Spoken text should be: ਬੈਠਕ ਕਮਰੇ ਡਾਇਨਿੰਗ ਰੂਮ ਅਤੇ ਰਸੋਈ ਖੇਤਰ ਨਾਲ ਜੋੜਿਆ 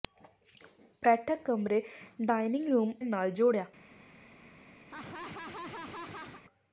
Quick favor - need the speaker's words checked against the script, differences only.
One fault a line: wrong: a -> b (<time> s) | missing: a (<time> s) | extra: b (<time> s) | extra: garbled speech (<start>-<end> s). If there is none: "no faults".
missing: ਅਤੇ ਰਸੋਈ ਖੇਤਰ (2.9 s)